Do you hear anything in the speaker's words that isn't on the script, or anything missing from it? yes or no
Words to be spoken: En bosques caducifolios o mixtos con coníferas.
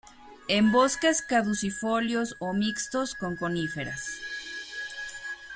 no